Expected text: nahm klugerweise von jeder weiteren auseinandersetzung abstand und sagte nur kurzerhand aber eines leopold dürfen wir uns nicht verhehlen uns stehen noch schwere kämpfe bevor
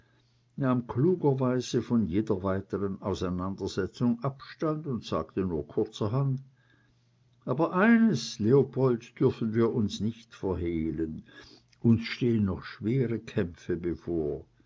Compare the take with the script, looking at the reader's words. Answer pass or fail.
pass